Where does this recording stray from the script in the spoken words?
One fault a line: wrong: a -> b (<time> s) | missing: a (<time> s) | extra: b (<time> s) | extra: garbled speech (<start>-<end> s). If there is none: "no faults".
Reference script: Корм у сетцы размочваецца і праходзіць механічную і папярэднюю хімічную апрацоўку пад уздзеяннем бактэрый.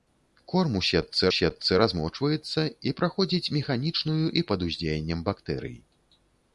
extra: сетцы (1.4 s)
missing: папярэднюю хімічную апрацоўку (4.5 s)